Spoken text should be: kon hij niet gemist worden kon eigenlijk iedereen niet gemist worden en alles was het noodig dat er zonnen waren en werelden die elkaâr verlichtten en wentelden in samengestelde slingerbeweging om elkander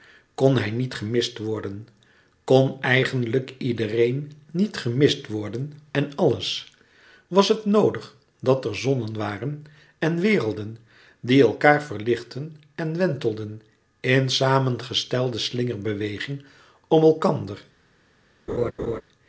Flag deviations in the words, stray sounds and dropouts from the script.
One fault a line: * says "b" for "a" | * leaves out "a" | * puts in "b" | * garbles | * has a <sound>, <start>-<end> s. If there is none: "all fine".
* has a laugh, 18.5-19.0 s